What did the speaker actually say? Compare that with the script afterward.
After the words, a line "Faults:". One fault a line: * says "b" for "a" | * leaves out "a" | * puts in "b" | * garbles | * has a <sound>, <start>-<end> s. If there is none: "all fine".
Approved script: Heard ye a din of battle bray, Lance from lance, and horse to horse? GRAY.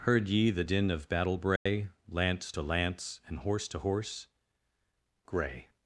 Heard ye the din of battle bray, Lance to lance, and horse to horse? GRAY.
Faults:
* says "the" for "a"
* has a dropout, 1.6-1.7 s
* says "to" for "from"